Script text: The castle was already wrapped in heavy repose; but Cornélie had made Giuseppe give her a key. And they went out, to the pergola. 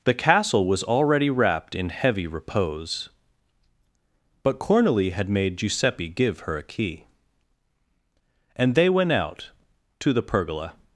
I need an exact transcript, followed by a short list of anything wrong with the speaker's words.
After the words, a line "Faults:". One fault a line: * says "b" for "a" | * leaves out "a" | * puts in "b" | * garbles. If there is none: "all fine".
The castle was already wrapped in heavy repose; but Cornélie had made Giuseppe give her a key. And they went out, to the pergola.
Faults:
all fine